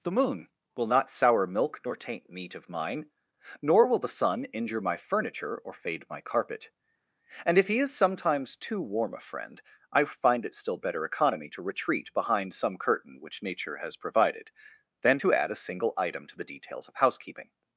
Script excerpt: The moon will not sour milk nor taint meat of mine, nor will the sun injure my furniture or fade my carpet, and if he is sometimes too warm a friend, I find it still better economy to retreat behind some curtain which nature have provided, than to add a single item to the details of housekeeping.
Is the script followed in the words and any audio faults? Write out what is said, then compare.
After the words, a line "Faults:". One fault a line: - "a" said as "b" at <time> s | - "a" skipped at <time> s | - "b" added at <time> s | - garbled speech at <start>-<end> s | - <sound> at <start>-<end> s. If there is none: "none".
The moon will not sour milk nor taint meat of mine, nor will the sun injure my furniture or fade my carpet, and if he is sometimes too warm a friend, I find it still better economy to retreat behind some curtain which nature has provided, than to add a single item to the details of housekeeping.
Faults:
- "have" said as "has" at 13.8 s